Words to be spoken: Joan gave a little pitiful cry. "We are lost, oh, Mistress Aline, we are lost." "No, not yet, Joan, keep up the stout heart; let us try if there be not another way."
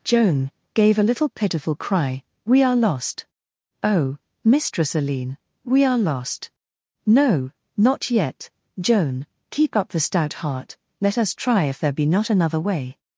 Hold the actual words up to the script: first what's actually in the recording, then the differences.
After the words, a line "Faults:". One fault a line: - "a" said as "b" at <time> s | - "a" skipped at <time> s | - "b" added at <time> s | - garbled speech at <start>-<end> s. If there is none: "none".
Joan gave a little pitiful cry. "We are lost, oh, Mistress Aline, we are lost." "No, not yet, Joan, keep up the stout heart; let us try if there be not another way."
Faults:
none